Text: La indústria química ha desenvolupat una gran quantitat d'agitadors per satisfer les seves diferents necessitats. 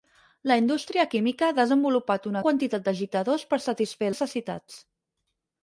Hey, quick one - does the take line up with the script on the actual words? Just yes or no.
no